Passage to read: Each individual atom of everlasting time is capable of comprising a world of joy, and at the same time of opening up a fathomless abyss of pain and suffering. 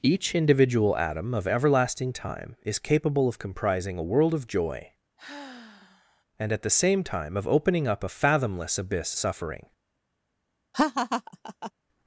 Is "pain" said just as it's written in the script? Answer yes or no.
no